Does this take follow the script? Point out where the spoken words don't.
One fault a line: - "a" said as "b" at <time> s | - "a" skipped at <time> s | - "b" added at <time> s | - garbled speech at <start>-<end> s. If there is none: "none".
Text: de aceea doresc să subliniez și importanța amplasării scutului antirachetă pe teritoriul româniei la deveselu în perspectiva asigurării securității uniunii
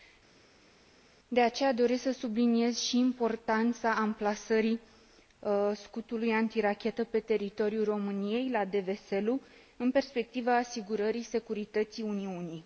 none